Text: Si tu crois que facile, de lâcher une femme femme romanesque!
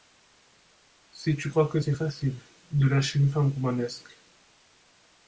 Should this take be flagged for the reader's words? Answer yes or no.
yes